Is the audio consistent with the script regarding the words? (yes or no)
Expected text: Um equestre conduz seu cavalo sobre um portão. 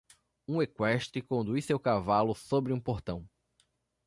yes